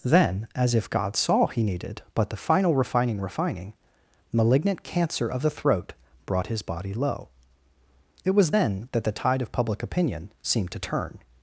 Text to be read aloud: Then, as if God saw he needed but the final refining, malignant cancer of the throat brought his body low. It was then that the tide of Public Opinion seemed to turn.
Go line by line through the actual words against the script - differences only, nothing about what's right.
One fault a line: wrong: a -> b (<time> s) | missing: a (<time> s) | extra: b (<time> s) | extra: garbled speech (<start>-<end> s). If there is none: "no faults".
extra: refining (3.2 s)